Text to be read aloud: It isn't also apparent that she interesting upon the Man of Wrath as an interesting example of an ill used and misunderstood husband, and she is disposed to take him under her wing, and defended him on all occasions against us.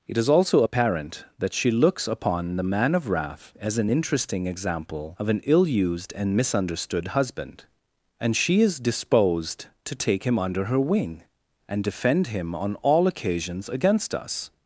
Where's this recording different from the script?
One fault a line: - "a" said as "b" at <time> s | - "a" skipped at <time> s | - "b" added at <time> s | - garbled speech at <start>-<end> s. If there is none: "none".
- "isn't" said as "is" at 0.2 s
- "interesting" said as "looks" at 1.7 s
- "defended" said as "defend" at 11.8 s